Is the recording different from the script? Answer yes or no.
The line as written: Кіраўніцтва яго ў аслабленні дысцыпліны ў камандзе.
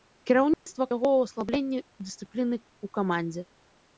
no